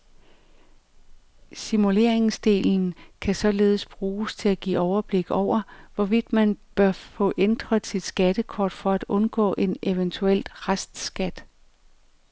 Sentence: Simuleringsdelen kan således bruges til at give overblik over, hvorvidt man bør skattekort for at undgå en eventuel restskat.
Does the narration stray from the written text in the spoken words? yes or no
yes